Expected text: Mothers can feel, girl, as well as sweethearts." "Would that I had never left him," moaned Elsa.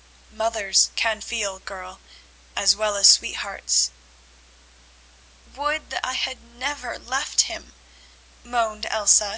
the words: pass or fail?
pass